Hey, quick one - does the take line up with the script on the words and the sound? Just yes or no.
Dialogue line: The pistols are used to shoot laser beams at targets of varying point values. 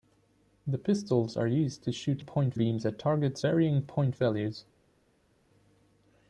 no